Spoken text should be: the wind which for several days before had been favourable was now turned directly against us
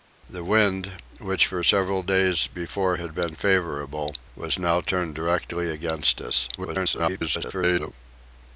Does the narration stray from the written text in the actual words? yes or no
yes